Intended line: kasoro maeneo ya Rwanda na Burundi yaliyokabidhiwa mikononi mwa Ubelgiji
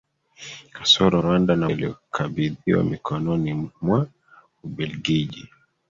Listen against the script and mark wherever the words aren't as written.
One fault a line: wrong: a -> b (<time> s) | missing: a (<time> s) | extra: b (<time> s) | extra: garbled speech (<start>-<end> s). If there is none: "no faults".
missing: maeneo ya (1.2 s)
missing: Burundi (1.7 s)